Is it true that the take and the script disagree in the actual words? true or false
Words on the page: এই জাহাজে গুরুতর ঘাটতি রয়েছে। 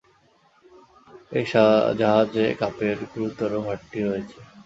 true